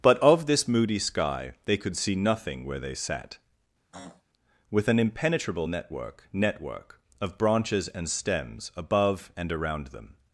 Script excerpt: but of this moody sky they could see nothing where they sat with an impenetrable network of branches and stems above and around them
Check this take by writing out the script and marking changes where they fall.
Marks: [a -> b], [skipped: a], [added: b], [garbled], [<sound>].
but of this moody sky they could see nothing where they sat [throat clearing] with an impenetrable network [added: network] of branches and stems above and around them